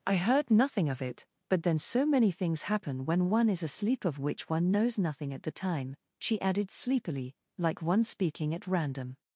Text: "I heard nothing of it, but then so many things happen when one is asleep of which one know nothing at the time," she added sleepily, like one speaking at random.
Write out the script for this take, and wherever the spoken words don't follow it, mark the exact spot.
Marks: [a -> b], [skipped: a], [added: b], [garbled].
"I heard nothing of it, but then so many things happen when one is asleep of which one [know -> knows] nothing at the time," she added sleepily, like one speaking at random.